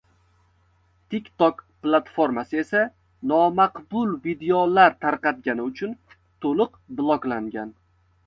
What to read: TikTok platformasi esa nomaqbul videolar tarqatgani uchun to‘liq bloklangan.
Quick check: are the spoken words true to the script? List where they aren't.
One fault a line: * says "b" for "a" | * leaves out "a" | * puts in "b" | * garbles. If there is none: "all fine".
all fine